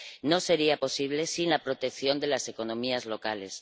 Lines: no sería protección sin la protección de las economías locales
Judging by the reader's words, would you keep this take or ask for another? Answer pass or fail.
fail